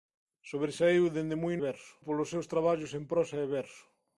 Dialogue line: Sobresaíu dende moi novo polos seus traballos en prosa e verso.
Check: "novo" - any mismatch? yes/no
yes